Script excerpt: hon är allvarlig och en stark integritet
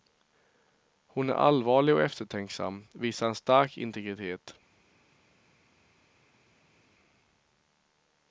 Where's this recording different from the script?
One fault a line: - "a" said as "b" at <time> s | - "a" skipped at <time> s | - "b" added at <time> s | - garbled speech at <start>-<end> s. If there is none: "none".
- "eftertänksam visar" added at 2.0 s